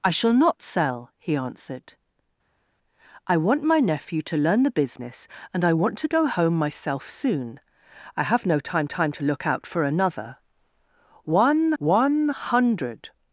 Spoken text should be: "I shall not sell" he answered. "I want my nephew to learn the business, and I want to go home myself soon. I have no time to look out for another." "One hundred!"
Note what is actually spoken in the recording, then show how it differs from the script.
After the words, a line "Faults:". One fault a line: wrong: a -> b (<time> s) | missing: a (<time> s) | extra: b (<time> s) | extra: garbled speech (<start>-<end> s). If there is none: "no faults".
"I shall not sell" he answered. "I want my nephew to learn the business, and I want to go home myself soon. I have no time time to look out for another." "One one hundred!"
Faults:
extra: time (8.8 s)
extra: one (11.8 s)